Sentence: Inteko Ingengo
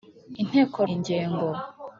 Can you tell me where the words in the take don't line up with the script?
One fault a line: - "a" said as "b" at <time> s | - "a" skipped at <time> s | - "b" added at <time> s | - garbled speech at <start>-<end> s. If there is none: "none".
none